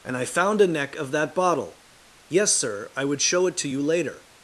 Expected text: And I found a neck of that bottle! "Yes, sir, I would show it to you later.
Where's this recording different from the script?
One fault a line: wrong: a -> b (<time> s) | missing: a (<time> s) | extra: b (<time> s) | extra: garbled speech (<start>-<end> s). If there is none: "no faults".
no faults